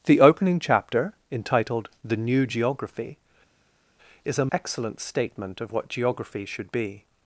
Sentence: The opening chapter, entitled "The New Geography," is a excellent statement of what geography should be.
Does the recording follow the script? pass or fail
pass